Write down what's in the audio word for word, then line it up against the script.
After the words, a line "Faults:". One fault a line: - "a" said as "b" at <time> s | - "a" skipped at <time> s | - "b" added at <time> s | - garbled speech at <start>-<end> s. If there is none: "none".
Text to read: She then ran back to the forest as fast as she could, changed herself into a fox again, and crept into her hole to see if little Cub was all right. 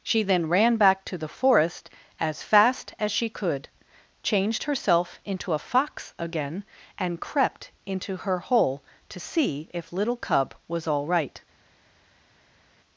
She then ran back to the forest as fast as she could, changed herself into a fox again, and crept into her hole to see if little Cub was all right.
Faults:
none